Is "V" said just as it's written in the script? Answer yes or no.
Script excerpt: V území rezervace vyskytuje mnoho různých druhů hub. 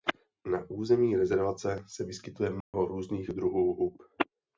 no